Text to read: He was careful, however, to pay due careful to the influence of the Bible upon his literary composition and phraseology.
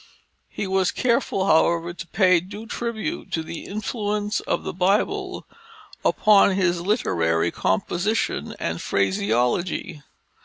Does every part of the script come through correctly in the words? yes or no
no